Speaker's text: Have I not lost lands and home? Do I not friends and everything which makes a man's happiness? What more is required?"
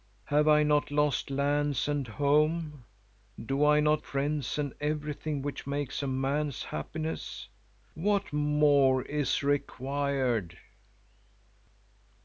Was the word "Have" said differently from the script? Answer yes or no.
no